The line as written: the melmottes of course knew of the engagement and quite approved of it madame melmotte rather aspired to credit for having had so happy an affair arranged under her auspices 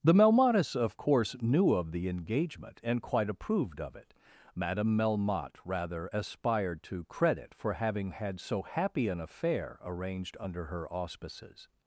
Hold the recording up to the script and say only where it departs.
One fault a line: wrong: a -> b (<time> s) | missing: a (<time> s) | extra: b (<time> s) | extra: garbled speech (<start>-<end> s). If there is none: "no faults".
no faults